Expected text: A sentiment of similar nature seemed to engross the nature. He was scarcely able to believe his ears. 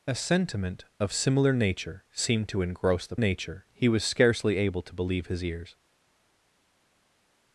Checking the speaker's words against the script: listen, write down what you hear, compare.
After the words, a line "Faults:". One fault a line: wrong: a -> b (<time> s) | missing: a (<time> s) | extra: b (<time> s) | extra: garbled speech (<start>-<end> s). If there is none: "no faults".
A sentiment of similar nature seemed to engross the nature. He was scarcely able to believe his ears.
Faults:
no faults